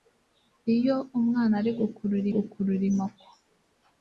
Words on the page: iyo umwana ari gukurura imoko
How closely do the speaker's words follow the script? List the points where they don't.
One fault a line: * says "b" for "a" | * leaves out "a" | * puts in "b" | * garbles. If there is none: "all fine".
* puts in "gukurura"